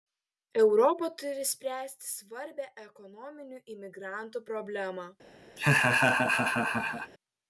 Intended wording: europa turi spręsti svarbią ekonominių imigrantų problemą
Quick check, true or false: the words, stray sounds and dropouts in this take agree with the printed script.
false